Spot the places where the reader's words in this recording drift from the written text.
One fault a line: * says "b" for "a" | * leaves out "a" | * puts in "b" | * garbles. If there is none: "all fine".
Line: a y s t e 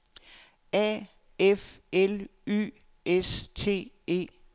* puts in "f l"